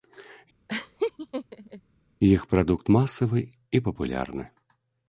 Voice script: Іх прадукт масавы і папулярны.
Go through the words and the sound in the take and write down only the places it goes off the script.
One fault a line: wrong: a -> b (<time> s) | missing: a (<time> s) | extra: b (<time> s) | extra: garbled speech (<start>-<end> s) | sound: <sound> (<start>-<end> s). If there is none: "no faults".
sound: laugh (0.7-1.8 s)